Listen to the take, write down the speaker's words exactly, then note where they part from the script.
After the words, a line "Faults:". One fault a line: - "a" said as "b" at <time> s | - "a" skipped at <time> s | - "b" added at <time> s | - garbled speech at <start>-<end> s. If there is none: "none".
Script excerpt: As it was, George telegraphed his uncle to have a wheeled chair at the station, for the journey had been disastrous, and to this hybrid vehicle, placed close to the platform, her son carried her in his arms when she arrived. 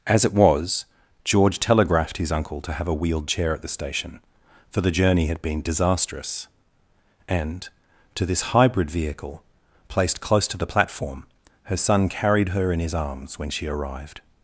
As it was, George telegraphed his uncle to have a wheeled chair at the station, for the journey had been disastrous, and to this hybrid vehicle, placed close to the platform, her son carried her in his arms when she arrived.
Faults:
none